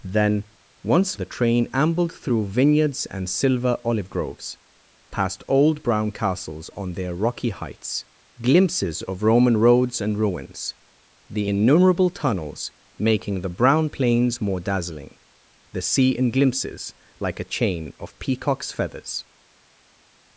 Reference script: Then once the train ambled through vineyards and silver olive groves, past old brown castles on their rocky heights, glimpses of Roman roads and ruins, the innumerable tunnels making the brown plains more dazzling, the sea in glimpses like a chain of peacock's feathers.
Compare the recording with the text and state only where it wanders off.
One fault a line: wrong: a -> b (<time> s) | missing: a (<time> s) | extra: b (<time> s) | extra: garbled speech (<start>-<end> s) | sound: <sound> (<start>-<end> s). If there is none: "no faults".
no faults